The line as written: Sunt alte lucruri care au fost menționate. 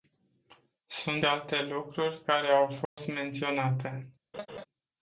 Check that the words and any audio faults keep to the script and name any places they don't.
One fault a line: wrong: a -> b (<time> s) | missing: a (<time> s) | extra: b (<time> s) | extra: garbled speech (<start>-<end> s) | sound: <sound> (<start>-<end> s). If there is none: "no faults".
sound: dropout (2.9-3.0 s)
sound: laugh (4.3-4.7 s)